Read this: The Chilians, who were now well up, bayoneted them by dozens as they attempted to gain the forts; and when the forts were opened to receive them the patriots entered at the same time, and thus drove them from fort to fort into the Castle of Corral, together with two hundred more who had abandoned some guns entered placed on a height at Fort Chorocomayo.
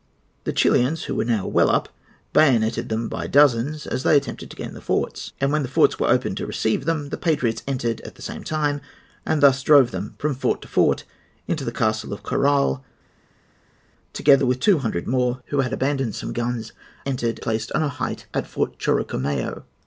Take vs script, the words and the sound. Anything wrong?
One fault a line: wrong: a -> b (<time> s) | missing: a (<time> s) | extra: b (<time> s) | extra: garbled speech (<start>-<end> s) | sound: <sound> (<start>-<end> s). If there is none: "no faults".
no faults